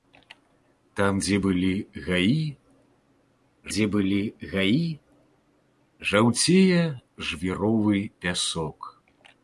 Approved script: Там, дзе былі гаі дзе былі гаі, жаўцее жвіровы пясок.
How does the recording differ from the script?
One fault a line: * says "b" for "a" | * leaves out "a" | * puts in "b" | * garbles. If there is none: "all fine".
all fine